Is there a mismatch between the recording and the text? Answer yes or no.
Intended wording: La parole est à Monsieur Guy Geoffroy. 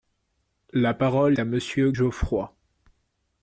yes